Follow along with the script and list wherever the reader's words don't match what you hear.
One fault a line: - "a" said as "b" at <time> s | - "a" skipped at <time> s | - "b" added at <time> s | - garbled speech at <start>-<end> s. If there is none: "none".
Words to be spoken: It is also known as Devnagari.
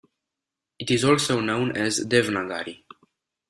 none